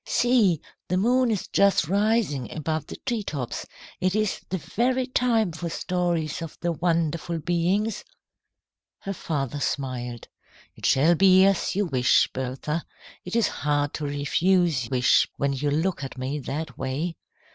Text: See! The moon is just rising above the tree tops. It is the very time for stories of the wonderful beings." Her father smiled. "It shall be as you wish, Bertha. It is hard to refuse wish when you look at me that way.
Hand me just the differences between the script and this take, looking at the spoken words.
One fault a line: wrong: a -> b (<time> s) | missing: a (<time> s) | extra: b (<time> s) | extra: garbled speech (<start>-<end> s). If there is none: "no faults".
no faults